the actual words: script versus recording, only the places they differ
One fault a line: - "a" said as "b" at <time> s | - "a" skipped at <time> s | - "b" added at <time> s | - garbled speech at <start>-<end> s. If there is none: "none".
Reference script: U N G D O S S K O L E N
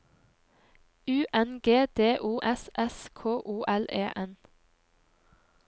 none